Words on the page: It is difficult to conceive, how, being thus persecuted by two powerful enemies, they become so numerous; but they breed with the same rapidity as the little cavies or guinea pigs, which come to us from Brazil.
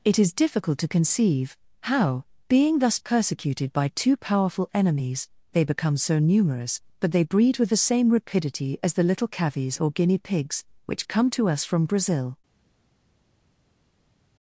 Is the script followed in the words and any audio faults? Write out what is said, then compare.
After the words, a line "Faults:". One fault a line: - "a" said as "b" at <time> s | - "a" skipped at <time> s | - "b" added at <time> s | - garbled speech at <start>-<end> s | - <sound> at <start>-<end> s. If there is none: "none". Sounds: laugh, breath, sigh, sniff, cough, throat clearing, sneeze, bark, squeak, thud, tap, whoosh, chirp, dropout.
It is difficult to conceive, how, being thus persecuted by two powerful enemies, they become so numerous; but they breed with the same rapidity as the little cavies or guinea pigs, which come to us from Brazil.
Faults:
none